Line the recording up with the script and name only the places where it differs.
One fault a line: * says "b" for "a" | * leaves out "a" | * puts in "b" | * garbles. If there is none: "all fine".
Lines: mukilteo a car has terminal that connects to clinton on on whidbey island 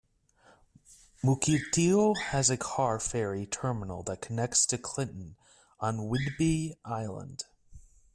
* puts in "has"
* says "ferry" for "has"
* leaves out "on"